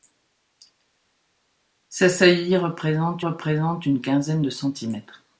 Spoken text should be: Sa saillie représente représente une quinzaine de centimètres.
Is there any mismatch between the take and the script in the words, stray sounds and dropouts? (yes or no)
no